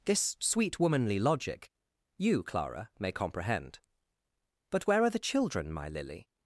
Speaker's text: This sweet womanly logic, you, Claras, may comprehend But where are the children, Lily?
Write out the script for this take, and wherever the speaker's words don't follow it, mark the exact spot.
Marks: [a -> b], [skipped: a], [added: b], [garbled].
This sweet womanly logic, you, [Claras, -> Clara] may comprehend But where are the children, [added: my] Lily?